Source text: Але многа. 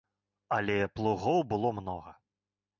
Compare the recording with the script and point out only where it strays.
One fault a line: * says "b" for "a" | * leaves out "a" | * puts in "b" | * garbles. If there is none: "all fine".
* puts in "плугоў было"